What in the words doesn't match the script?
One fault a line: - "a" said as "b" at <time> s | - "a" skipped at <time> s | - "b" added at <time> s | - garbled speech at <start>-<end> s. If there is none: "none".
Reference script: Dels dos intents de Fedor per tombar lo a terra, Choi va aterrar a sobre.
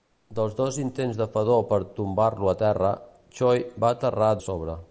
none